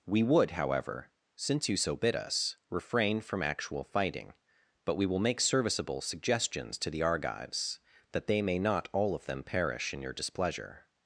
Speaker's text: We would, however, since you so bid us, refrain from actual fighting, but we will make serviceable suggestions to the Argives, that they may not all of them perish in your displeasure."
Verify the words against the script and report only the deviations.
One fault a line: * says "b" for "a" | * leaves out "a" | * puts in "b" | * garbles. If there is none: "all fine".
all fine